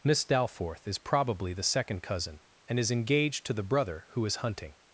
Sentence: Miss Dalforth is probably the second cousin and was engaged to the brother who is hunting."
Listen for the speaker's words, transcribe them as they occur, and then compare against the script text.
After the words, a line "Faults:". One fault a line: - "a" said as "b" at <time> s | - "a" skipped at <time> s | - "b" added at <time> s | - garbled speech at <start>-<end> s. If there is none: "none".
Miss Dalforth is probably the second cousin and is engaged to the brother who is hunting."
Faults:
- "was" said as "is" at 2.8 s